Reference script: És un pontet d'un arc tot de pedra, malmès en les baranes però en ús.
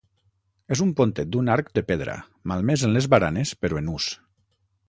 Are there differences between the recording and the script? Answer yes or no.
yes